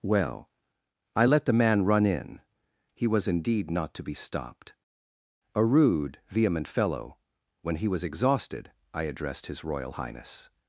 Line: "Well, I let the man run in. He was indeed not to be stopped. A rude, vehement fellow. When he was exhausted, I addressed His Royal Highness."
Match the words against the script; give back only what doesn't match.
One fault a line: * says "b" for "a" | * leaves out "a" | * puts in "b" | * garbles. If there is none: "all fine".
all fine